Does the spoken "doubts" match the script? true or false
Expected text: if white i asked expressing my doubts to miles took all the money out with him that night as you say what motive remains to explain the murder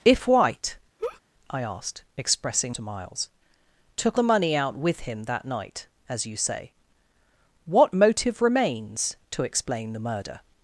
false